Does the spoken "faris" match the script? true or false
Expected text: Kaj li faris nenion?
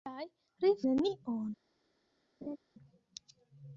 false